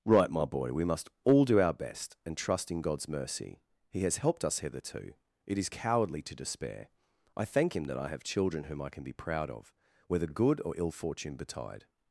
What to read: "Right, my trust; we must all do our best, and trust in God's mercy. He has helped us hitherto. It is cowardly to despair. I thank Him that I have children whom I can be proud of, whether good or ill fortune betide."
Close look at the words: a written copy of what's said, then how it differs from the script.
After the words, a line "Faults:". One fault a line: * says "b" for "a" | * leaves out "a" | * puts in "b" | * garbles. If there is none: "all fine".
"Right, my boy; we must all do our best, and trust in God's mercy. He has helped us hitherto. It is cowardly to despair. I thank Him that I have children whom I can be proud of, whether good or ill fortune betide."
Faults:
* says "boy" for "trust"